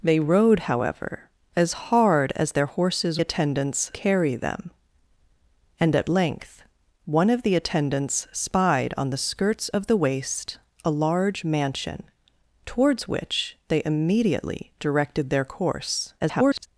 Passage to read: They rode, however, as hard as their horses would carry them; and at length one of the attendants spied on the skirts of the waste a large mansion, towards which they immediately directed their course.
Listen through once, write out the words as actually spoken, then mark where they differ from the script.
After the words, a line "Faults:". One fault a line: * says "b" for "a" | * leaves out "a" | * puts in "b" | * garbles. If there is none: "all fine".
They rode, however, as hard as their horses attendants carry them; and at length one of the attendants spied on the skirts of the waste a large mansion, towards which they immediately directed their course. [garbled]
Faults:
* says "attendants" for "would"
* garbles